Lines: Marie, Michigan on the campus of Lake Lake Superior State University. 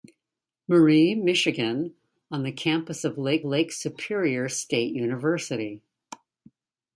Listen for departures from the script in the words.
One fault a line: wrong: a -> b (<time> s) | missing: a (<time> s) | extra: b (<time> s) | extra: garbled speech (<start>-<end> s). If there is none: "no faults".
no faults